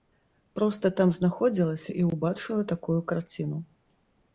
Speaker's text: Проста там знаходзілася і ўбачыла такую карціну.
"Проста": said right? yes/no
yes